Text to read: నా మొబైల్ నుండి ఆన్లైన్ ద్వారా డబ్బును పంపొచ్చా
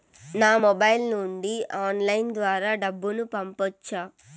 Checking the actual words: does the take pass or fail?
pass